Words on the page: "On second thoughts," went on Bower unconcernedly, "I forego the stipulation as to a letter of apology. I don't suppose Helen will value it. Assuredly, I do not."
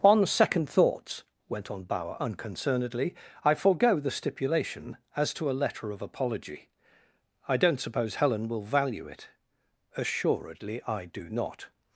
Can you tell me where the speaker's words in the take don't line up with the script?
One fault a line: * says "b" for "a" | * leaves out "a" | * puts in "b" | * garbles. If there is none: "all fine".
all fine